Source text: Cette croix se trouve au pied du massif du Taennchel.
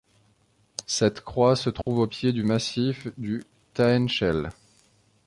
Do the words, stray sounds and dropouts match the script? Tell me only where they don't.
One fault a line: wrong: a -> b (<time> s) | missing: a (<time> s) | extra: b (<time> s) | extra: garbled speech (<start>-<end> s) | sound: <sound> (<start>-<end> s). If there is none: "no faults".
sound: dropout (1.8-1.9 s)